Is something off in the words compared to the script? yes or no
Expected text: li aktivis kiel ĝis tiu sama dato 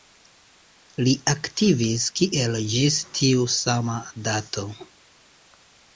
no